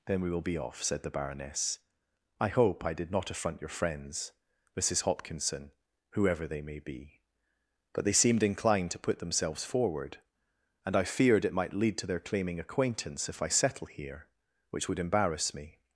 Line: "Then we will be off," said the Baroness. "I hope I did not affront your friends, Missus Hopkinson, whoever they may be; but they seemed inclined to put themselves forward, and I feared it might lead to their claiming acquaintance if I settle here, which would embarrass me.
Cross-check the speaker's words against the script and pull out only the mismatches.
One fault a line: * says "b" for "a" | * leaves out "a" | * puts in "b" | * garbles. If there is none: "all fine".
all fine